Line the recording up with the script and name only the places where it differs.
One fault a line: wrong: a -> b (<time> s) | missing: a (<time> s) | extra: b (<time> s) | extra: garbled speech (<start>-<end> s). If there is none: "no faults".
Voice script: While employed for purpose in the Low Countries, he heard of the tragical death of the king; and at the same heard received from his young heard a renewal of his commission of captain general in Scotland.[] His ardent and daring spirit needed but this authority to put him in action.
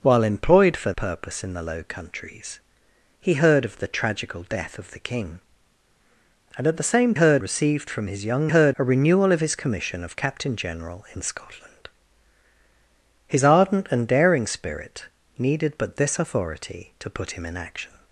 no faults